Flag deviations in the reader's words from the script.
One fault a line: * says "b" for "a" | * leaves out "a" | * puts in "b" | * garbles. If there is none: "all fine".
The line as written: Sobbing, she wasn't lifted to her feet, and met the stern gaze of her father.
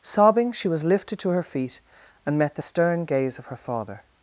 * says "was" for "wasn't"